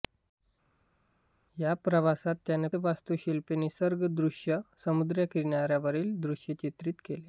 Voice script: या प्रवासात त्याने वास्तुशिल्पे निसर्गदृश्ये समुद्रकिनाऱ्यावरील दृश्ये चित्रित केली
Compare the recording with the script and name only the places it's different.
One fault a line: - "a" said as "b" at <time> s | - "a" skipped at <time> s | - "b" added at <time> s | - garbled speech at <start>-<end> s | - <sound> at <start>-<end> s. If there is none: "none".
none